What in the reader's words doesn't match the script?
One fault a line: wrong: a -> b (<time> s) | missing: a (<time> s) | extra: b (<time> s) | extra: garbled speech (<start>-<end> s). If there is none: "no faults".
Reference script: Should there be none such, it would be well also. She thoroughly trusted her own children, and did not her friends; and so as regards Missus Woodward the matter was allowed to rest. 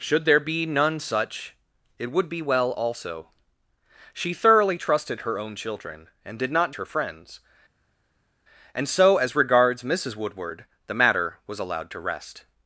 no faults